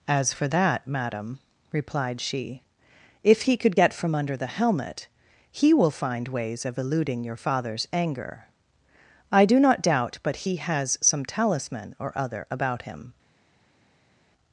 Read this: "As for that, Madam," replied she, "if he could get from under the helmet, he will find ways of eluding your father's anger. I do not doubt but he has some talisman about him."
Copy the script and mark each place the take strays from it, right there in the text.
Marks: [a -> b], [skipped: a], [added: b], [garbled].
"As for that, Madam," replied she, "if he could get from under the helmet, he will find ways of eluding your father's anger. I do not doubt but he has some talisman [added: or other] about him."